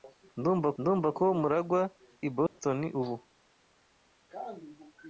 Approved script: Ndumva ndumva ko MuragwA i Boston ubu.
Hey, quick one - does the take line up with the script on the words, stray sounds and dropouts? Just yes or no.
no